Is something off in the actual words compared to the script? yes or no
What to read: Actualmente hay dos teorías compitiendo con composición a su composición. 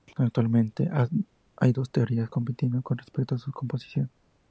yes